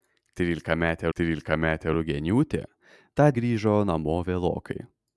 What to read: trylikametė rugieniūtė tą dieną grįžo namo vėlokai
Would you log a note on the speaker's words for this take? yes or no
yes